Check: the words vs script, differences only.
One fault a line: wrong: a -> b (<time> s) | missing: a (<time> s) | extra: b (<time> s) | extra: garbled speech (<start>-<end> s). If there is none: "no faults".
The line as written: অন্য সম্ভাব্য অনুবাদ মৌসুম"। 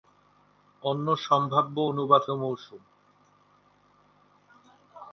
no faults